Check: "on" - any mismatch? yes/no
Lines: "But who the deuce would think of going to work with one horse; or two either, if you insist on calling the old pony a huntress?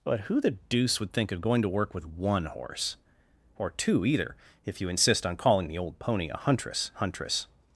no